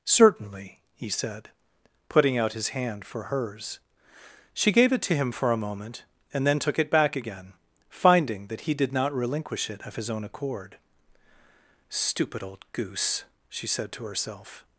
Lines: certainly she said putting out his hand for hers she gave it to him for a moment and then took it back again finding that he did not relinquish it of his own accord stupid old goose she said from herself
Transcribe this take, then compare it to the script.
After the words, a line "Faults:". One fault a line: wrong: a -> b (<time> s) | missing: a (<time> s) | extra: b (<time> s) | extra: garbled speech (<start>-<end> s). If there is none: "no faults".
certainly he said putting out his hand for hers she gave it to him for a moment and then took it back again finding that he did not relinquish it of his own accord stupid old goose she said to herself
Faults:
wrong: she -> he (0.9 s)
wrong: from -> to (13.9 s)